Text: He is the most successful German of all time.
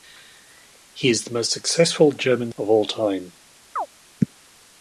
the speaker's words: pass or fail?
pass